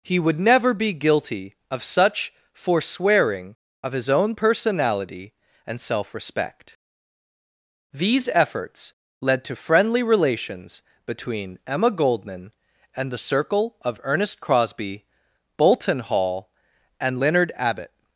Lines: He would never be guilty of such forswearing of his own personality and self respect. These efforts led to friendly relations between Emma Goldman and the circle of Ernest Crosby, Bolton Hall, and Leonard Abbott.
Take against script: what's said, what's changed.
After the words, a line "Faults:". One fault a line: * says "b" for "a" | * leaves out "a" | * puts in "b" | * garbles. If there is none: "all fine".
He would never be guilty of such forswearing of his own personality and self respect. These efforts led to friendly relations between Emma Goldman and the circle of Ernest Crosby, Bolton Hall, and Leonard Abbott.
Faults:
all fine